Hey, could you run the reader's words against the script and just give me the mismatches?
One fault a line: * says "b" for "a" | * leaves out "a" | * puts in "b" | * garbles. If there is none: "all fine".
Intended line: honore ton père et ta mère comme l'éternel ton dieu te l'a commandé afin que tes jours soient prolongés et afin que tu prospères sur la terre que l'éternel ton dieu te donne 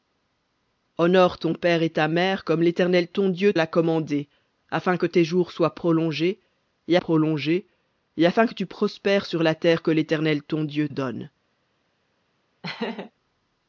* leaves out "te"
* puts in "prolongés et"
* leaves out "te"